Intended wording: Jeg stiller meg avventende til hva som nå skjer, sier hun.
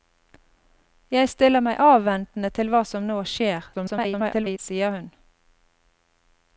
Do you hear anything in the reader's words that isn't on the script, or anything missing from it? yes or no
yes